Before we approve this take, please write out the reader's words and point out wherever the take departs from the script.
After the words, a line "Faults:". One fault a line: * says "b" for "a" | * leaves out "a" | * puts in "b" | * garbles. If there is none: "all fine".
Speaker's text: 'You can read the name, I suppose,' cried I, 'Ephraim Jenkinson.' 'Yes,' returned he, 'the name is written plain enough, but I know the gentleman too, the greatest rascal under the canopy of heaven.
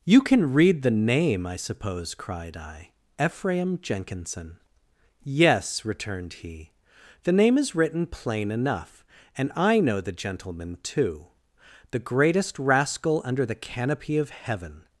'You can read the name, I suppose,' cried I, 'Ephraim Jenkinson.' 'Yes,' returned he, 'the name is written plain enough, and I know the gentleman too, the greatest rascal under the canopy of heaven.
Faults:
* says "and" for "but"